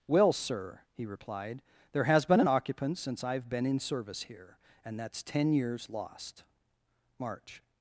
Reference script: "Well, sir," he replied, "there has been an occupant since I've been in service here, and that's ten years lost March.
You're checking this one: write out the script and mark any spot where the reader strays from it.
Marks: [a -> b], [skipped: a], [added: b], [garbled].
"Well, sir," he replied, "there has been an occupant since I've been in service here, and that's ten years lost March.